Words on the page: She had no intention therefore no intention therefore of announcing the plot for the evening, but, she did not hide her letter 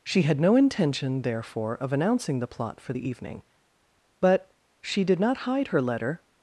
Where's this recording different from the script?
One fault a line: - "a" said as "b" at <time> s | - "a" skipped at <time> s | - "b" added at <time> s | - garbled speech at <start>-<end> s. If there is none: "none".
- "no intention therefore" skipped at 1.7 s